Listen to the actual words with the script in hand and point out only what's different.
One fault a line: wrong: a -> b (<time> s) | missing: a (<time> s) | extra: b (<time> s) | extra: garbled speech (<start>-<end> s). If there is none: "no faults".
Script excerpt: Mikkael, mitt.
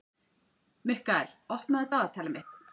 extra: opnaðu dagatalið (1.6 s)